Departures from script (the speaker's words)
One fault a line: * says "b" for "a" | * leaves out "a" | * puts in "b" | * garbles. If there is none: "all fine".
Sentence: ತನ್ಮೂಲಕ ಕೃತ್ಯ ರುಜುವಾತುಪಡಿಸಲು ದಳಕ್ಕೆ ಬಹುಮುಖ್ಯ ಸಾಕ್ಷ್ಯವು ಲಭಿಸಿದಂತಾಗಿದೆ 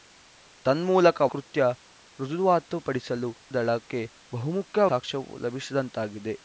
all fine